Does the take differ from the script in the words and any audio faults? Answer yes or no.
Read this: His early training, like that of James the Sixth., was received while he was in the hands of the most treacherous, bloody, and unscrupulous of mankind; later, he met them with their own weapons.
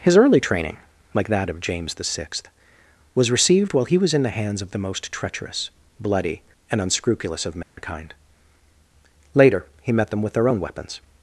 yes